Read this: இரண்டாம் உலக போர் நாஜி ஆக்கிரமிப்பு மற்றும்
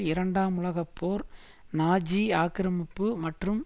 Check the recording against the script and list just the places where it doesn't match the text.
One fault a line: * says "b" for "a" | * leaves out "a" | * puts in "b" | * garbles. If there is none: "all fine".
all fine